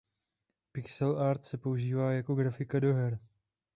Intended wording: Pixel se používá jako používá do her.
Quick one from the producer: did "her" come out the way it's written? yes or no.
yes